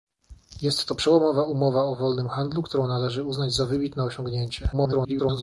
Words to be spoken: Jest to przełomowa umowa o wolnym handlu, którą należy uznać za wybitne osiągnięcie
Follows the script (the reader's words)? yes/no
no